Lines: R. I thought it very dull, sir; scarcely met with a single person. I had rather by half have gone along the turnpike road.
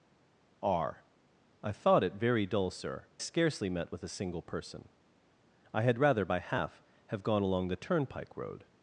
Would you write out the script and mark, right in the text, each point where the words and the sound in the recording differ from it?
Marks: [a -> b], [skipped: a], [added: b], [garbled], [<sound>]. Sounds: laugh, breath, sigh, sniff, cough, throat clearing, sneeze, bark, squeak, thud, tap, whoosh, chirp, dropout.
R. I thought it very dull, sir; scarcely met with a single person. I had rather by half have gone along the turnpike road.